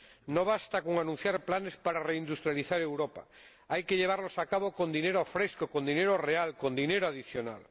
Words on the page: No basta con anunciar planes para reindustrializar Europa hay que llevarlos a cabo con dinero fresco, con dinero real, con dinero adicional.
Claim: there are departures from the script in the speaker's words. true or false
false